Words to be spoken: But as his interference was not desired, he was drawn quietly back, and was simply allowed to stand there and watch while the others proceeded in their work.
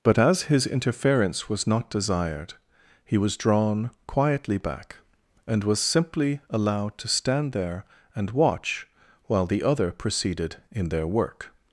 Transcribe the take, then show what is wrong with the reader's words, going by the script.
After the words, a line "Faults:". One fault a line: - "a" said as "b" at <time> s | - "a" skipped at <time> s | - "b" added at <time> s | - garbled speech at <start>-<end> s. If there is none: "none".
But as his interference was not desired, he was drawn quietly back, and was simply allowed to stand there and watch while the other proceeded in their work.
Faults:
- "others" said as "other" at 9.6 s